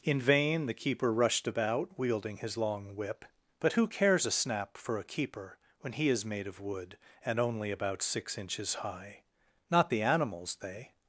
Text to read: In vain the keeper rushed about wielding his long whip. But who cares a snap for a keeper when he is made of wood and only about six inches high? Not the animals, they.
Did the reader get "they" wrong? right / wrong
right